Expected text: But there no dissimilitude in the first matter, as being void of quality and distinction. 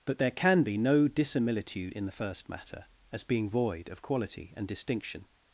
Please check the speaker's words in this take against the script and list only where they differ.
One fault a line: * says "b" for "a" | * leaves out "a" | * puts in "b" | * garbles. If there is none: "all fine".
* puts in "can be"